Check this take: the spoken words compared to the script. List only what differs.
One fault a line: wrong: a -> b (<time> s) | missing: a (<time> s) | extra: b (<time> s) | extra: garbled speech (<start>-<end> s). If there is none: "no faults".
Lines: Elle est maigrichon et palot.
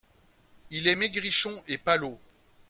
wrong: Elle -> Il (0.7 s)